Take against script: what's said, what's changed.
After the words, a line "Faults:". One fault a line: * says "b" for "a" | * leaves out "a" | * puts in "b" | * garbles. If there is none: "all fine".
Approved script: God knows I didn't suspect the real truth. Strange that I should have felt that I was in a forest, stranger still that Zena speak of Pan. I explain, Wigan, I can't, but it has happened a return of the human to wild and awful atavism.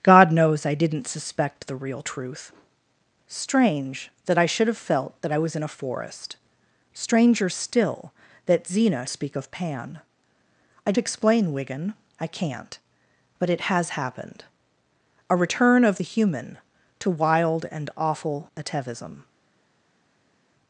God knows I didn't suspect the real truth. Strange that I should have felt that I was in a forest, stranger still that Zena speak of Pan. I explain, Wigan, I can't, but it has happened a return of the human to wild and awful atavism.
Faults:
all fine